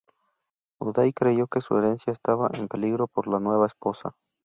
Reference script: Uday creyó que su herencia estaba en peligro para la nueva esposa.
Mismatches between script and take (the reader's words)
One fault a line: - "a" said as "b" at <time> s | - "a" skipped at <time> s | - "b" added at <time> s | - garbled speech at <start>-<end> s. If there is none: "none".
- "para" said as "por" at 3.1 s